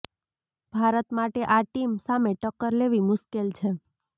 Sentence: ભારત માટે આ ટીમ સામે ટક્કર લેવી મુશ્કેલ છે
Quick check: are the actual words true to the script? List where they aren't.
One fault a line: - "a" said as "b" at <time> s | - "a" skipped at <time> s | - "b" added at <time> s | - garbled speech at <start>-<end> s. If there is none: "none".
none